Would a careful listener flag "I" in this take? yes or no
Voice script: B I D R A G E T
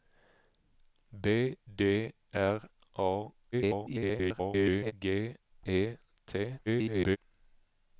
yes